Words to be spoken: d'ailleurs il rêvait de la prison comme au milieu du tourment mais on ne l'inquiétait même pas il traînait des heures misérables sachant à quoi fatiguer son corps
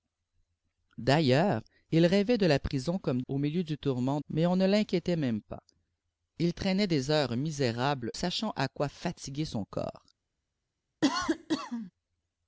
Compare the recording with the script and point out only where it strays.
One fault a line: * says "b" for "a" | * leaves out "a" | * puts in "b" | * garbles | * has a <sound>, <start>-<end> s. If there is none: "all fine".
* has a cough, 11.0-11.9 s